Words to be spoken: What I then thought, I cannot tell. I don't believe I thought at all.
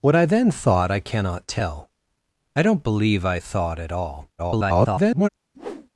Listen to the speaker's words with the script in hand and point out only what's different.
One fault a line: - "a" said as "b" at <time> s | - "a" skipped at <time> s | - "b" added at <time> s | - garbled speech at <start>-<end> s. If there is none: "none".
- garbled speech at 4.4-5.3 s